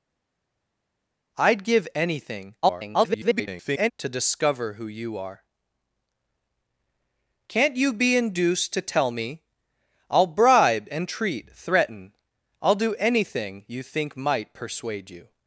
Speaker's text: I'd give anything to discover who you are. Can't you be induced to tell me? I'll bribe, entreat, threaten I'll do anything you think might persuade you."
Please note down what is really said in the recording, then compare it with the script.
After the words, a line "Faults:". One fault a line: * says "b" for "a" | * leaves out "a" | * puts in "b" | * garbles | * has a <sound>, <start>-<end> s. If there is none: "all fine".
I'd give anything [garbled] to discover who you are. Can't you be induced to tell me? I'll bribe, entreat, threaten I'll do anything you think might persuade you."
Faults:
* garbles